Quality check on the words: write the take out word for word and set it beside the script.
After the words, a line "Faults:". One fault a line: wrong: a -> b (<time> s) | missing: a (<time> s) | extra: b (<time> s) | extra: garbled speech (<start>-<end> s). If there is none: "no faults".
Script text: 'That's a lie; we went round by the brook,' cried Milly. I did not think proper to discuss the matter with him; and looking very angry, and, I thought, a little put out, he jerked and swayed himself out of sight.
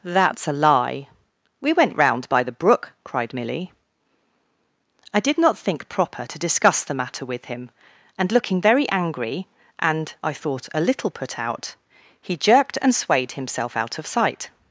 'That's a lie; we went round by the brook,' cried Milly. I did not think proper to discuss the matter with him; and looking very angry, and, I thought, a little put out, he jerked and swayed himself out of sight.
Faults:
no faults